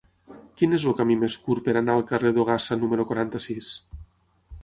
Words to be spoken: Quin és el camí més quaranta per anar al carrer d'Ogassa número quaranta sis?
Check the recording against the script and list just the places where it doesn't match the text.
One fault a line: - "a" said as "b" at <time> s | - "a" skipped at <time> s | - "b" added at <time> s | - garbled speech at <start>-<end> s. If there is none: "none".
- "quaranta" said as "curt" at 1.5 s